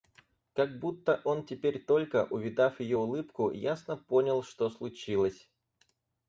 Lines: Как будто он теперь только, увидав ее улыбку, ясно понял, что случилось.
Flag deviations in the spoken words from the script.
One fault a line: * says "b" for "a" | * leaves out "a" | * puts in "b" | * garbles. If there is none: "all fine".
all fine